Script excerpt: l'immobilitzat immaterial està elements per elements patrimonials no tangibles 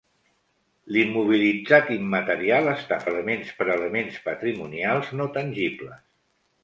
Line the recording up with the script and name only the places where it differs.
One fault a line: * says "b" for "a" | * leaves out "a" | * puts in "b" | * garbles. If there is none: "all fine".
all fine